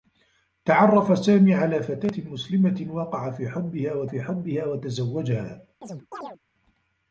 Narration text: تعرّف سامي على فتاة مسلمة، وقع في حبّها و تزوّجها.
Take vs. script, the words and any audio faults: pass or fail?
fail